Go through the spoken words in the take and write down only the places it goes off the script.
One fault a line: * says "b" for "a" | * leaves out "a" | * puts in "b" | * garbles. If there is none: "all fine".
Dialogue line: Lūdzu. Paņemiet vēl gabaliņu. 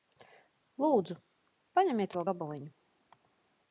all fine